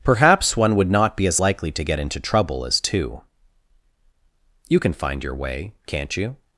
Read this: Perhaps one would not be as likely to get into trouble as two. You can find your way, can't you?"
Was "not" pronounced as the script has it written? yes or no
yes